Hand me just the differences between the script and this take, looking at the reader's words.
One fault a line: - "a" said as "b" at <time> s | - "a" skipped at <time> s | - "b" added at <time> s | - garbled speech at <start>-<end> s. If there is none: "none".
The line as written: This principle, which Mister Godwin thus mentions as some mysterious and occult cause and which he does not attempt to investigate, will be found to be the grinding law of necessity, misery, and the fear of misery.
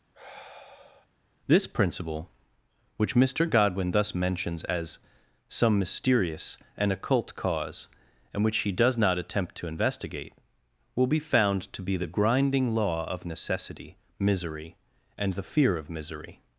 none